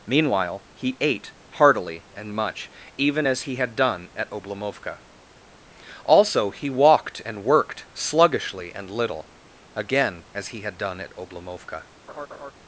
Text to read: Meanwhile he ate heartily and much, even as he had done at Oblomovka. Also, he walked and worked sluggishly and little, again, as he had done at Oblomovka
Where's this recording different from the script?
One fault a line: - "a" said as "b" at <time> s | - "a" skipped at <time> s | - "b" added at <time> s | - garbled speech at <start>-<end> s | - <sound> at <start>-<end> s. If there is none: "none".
- laugh at 12.1-12.5 s